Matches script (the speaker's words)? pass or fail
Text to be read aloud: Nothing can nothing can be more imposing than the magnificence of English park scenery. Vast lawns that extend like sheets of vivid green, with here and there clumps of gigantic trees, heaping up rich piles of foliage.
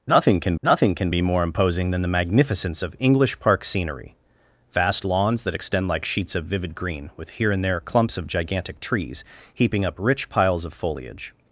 pass